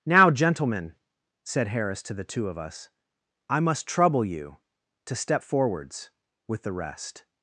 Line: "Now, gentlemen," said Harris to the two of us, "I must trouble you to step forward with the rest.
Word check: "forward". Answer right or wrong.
wrong